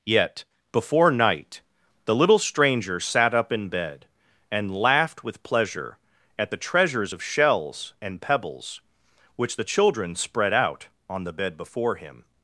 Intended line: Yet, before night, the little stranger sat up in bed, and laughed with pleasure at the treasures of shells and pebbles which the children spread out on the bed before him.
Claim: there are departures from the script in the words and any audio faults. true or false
false